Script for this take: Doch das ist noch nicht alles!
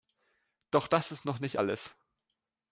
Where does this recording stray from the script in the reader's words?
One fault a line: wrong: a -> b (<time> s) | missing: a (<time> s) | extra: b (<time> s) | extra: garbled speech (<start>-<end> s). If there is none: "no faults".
no faults